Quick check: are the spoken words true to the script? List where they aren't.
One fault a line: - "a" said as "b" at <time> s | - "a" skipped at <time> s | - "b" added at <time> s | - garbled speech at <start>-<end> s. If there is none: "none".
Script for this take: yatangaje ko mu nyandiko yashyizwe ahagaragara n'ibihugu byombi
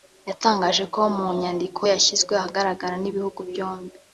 none